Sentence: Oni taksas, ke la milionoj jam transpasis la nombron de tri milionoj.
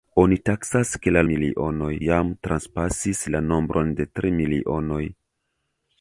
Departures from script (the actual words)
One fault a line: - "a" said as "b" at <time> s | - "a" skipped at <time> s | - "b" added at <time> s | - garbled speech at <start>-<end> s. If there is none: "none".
none